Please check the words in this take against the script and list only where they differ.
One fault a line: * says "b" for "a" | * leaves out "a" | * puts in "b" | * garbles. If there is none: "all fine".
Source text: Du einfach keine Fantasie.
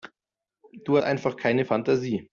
all fine